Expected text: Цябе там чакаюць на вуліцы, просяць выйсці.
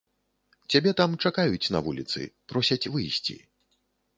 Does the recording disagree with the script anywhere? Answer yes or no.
no